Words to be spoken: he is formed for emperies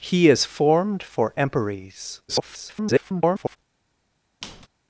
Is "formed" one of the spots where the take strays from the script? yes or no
no